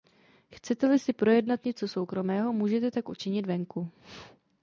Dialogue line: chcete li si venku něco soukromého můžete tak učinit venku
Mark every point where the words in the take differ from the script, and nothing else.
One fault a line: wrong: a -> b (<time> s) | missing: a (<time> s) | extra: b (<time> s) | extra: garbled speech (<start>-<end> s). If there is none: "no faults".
wrong: venku -> projednat (1.1 s)